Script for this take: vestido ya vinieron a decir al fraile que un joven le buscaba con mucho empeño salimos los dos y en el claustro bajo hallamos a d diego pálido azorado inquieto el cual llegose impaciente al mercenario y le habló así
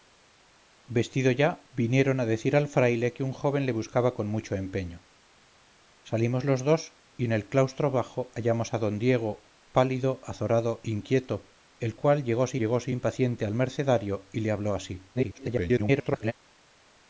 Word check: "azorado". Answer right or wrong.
right